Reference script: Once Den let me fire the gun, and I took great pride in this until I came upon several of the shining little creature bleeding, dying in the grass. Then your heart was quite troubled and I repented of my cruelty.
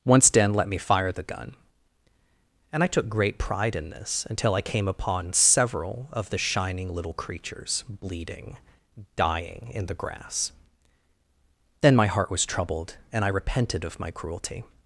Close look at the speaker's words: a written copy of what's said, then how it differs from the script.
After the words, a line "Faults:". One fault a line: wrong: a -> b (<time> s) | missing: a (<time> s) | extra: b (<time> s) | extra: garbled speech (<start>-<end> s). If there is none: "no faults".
Once Den let me fire the gun, and I took great pride in this until I came upon several of the shining little creatures bleeding, dying in the grass. Then my heart was troubled and I repented of my cruelty.
Faults:
wrong: creature -> creatures (7.1 s)
wrong: your -> my (11.9 s)
missing: quite (12.5 s)